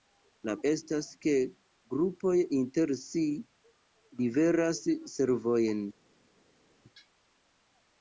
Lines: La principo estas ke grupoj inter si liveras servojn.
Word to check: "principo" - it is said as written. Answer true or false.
false